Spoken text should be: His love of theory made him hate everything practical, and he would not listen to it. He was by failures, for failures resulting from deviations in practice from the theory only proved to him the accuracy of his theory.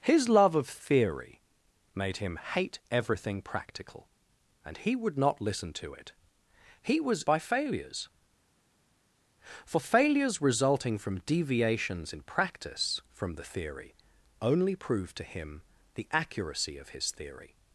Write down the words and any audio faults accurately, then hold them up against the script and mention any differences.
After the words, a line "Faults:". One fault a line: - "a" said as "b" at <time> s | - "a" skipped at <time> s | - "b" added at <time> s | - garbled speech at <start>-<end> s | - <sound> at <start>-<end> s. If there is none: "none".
His love of theory made him hate everything practical, and he would not listen to it. He was by failures, for failures resulting from deviations in practice from the theory only proved to him the accuracy of his theory.
Faults:
none